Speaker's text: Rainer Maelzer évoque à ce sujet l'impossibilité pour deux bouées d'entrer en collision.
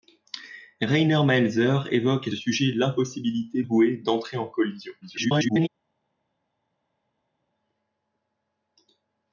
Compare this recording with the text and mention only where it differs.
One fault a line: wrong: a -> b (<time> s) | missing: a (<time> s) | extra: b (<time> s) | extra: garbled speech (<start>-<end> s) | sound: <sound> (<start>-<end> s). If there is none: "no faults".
missing: ce (2.3 s)
missing: pour deux (3.6 s)
extra: garbled speech (5.0-5.7 s)